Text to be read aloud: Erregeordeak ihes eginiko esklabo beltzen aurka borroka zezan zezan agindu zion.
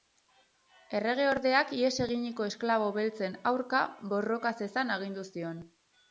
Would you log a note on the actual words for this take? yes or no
yes